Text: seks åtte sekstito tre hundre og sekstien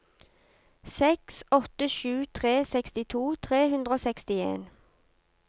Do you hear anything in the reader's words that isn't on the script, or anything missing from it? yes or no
yes